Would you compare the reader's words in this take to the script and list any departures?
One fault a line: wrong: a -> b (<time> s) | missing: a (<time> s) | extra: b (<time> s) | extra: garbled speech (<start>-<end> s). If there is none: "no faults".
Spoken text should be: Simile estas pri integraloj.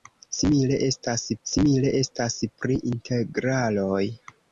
extra: simile estas (1.5 s)